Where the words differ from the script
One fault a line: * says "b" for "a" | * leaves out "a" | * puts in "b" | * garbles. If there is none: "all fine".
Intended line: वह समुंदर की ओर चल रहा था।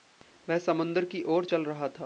all fine